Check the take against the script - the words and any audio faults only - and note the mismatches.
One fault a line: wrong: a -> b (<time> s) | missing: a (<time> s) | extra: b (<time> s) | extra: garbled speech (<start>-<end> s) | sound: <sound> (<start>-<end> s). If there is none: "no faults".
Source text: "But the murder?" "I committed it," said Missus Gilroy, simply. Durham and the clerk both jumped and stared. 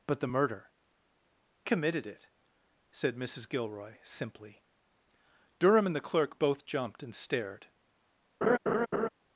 missing: I (0.7 s)
sound: laugh (8.4-9.1 s)